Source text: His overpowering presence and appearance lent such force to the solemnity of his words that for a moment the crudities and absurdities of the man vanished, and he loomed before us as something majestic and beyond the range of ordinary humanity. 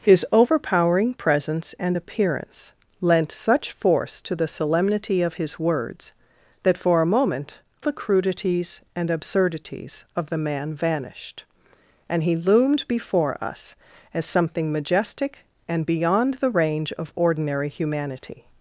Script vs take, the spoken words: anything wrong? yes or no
no